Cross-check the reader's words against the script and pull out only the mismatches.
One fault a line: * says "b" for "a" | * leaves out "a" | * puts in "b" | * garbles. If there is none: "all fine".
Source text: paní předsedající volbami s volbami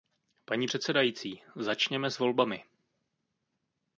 * says "začněme" for "volbami"